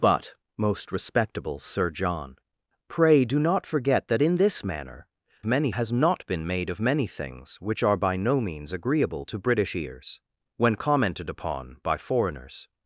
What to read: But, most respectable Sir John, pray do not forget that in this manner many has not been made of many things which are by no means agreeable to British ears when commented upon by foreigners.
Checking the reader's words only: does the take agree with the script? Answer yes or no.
yes